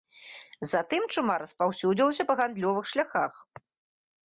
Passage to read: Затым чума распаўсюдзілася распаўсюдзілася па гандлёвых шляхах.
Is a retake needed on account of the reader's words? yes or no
yes